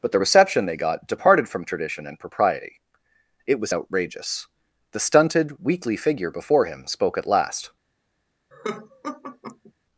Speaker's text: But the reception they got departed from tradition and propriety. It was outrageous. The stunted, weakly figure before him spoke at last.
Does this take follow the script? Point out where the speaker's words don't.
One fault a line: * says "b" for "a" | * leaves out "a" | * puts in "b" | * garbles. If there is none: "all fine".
all fine